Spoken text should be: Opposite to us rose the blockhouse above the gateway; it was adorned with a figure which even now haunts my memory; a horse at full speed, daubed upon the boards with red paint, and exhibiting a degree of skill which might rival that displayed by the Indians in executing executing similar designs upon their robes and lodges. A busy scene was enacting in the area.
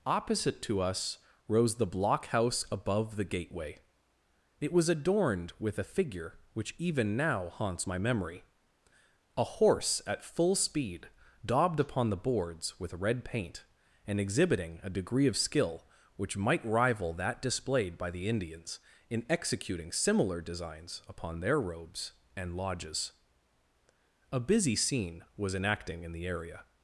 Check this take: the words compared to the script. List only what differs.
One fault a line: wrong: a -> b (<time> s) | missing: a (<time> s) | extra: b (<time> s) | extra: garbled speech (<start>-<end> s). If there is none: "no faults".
missing: executing (19.9 s)